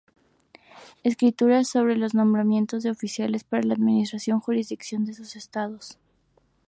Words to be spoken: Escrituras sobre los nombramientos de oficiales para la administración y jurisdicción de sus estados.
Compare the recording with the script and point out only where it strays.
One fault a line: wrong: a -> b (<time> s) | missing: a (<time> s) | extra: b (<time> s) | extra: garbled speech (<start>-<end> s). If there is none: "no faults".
no faults